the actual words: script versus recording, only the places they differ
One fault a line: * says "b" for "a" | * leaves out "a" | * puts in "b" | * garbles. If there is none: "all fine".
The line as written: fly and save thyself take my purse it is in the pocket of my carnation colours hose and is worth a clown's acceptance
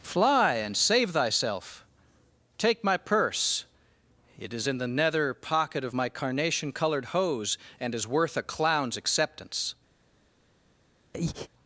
* puts in "nether"
* says "coloured" for "colours"